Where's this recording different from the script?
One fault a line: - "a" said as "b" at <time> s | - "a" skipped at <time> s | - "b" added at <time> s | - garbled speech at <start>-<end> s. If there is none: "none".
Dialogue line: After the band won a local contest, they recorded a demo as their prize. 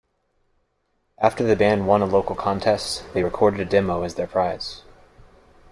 none